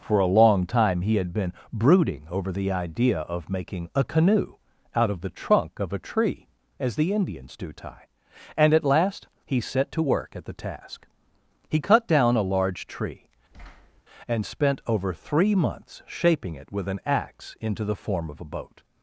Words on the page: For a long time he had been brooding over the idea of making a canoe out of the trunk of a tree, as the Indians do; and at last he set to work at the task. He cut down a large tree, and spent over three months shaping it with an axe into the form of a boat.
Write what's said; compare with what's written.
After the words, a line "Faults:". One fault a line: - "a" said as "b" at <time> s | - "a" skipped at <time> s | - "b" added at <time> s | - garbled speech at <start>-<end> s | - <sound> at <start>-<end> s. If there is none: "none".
For a long time he had been brooding over the idea of making a canoe out of the trunk of a tree, as the Indians do; tie and at last he set to work at the task. He cut down a large tree, and spent over three months shaping it with an axe into the form of a boat.
Faults:
- "tie" added at 7.7 s
- thud at 13.5-14.0 s